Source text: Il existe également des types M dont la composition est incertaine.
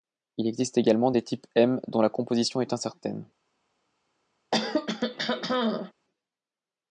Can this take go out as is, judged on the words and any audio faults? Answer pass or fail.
fail